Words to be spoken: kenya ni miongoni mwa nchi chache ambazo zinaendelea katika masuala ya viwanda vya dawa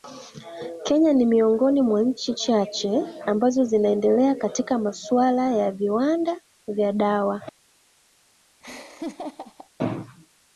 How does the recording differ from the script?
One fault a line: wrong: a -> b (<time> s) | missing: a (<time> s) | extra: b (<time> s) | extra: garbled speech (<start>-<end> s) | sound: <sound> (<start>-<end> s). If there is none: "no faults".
sound: laugh (8.6-9.7 s)